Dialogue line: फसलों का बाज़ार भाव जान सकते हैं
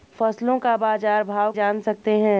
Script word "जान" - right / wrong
right